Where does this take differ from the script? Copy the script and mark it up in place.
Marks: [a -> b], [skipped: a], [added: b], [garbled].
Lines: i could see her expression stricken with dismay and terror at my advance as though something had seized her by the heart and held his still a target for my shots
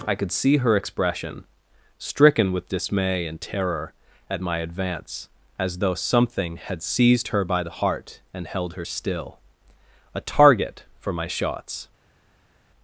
i could see her expression stricken with dismay and terror at my advance as though something had seized her by the heart and held [his -> her] still a target for my shots